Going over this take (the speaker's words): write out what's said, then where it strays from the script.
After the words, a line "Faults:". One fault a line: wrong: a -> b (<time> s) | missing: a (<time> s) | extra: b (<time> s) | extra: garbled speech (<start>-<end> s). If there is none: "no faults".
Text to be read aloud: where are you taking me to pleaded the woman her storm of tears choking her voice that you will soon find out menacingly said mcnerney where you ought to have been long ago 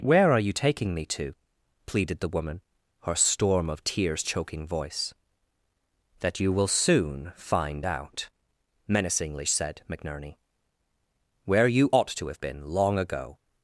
where are you taking me to pleaded the woman her storm of tears choking voice that you will soon find out menacingly said mcnerney where you ought to have been long ago
Faults:
missing: her (4.7 s)